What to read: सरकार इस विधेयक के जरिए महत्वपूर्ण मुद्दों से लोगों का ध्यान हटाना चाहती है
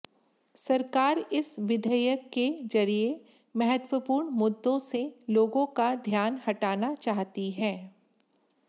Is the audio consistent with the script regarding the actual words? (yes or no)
yes